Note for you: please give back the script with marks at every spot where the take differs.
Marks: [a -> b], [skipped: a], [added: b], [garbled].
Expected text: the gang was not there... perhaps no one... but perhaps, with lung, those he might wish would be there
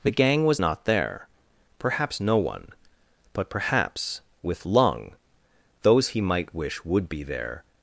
the gang was not there... perhaps no one... but perhaps, with lung, those he might wish would be there